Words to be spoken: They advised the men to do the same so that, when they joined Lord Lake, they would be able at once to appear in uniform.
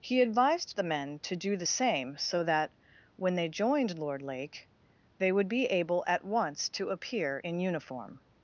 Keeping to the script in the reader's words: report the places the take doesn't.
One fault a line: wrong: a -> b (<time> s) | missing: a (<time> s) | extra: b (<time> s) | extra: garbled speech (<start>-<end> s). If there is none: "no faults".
wrong: They -> He (0.0 s)